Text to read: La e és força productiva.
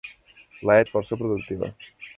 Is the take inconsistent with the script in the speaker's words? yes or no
no